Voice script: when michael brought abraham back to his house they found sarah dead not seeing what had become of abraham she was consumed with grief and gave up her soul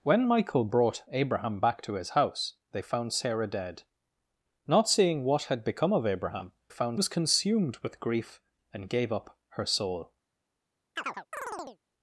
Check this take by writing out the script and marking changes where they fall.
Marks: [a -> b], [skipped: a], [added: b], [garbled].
when michael brought abraham back to his house they found sarah dead not seeing what had become of abraham [she -> found] was consumed with grief and gave up her soul